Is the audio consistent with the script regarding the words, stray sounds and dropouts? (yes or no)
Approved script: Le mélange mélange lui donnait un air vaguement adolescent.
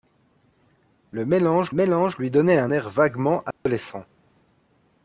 no